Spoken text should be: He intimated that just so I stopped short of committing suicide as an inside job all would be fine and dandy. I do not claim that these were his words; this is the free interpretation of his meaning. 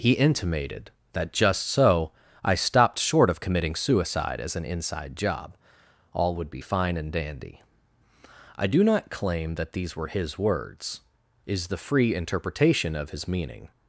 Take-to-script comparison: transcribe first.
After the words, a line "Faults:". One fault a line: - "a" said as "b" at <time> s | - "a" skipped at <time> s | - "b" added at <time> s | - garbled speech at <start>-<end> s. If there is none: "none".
He intimated that just so I stopped short of committing suicide as an inside job all would be fine and dandy. I do not claim that these were his words; is the free interpretation of his meaning.
Faults:
- "this" skipped at 11.0 s